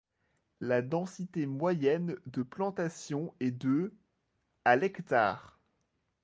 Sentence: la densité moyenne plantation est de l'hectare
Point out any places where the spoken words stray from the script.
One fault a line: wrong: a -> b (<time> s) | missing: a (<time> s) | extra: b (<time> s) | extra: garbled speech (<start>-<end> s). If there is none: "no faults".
extra: de (2.2 s)
extra: à (4.6 s)